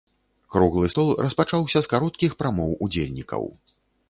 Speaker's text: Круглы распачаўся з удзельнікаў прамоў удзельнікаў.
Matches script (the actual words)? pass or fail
fail